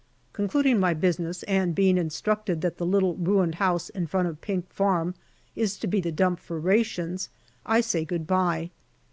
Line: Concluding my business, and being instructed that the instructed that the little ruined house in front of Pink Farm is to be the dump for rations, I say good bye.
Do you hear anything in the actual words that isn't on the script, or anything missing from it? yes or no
yes